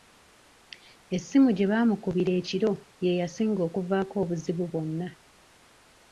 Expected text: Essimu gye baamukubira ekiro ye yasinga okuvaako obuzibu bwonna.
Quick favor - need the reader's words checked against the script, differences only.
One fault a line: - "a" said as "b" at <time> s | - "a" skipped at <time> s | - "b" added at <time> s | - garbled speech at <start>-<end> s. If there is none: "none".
none